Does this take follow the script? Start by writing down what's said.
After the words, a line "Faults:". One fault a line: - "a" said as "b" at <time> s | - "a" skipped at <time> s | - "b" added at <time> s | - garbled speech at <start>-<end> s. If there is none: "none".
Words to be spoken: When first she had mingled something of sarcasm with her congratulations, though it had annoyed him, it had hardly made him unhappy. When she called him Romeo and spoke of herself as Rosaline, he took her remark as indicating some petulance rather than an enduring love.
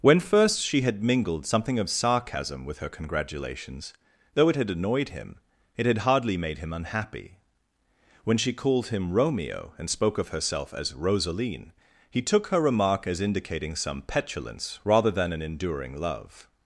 When first she had mingled something of sarcasm with her congratulations, though it had annoyed him, it had hardly made him unhappy. When she called him Romeo and spoke of herself as Rosaline, he took her remark as indicating some petulance rather than an enduring love.
Faults:
none